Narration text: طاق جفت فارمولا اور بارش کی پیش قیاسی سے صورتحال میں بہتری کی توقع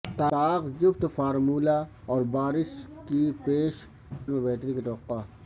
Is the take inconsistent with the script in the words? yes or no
yes